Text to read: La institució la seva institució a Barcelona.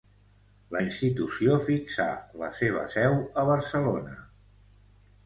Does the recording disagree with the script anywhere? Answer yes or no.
yes